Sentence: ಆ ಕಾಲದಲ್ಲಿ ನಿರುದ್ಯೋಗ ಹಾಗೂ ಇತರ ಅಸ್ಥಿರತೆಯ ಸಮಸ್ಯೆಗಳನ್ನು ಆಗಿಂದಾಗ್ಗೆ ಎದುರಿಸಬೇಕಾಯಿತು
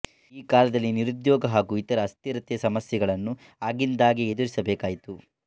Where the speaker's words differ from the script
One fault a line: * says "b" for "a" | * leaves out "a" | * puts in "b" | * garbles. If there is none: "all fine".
* says "ಈ" for "ಆ"